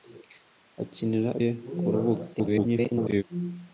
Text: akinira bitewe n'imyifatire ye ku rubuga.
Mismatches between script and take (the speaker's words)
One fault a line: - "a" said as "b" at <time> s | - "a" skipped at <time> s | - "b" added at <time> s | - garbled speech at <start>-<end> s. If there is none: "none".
- "bitewe n'imyifatire" skipped at 1.3 s
- garbled speech at 2.3-3.2 s